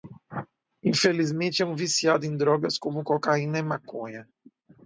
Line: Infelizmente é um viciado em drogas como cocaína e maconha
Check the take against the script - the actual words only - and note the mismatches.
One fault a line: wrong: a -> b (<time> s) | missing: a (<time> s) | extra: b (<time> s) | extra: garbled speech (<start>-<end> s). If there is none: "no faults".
no faults